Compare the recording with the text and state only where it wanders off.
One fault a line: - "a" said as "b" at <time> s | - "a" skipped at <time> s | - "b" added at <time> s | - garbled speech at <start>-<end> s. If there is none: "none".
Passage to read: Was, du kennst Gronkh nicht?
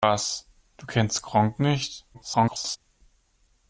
- garbled speech at 2.1-2.8 s